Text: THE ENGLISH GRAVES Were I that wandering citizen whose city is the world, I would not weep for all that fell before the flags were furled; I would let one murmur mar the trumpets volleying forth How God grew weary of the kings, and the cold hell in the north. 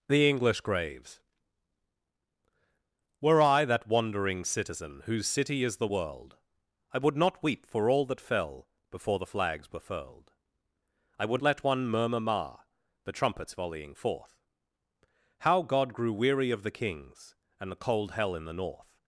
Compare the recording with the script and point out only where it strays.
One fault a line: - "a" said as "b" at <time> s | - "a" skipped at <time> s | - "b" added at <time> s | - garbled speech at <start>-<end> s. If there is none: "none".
none